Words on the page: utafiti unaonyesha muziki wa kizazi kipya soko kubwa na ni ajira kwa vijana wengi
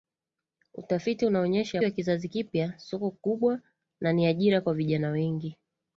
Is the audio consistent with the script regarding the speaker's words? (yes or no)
no